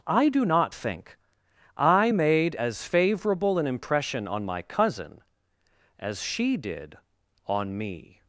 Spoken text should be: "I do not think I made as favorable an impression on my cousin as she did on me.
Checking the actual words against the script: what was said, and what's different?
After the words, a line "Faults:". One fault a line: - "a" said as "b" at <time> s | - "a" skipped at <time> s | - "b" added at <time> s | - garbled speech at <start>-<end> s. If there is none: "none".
"I do not think I made as favorable an impression on my cousin as she did on me.
Faults:
none